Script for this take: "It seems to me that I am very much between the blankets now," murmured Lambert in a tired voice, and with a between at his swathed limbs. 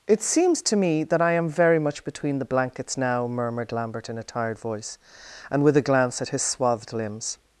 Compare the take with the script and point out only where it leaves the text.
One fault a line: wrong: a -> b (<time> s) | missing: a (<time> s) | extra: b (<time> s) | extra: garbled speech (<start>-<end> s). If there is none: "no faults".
wrong: between -> glance (5.8 s)